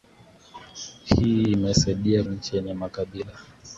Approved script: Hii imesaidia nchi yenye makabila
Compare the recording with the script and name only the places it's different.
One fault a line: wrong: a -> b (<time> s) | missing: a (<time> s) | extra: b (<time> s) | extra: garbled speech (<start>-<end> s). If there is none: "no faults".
no faults